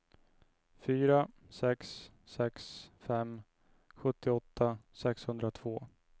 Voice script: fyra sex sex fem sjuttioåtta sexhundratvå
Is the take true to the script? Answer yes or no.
yes